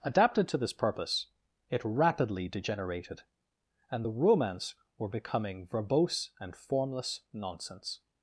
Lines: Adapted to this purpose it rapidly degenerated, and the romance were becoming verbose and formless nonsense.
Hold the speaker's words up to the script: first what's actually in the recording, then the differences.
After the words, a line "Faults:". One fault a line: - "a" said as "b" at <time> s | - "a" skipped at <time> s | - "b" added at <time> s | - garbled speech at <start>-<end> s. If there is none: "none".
Adapted to this purpose it rapidly degenerated, and the romance were becoming verbose and formless nonsense.
Faults:
none